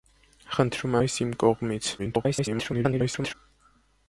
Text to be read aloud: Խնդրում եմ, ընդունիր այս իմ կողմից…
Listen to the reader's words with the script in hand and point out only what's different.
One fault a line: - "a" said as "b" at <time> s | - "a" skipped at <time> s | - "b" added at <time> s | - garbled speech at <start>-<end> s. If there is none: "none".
- "եմ ընդունիր" skipped at 1.0 s
- garbled speech at 2.0-3.3 s